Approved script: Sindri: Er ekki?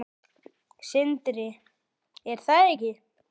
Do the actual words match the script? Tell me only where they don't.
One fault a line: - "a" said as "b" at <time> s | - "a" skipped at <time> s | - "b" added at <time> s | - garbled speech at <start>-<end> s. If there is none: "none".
- "það" added at 2.5 s